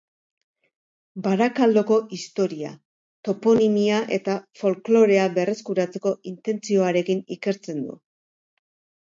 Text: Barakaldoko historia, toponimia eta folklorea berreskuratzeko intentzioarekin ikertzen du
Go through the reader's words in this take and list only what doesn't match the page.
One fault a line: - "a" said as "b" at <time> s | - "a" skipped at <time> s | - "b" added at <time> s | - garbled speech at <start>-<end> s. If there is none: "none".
none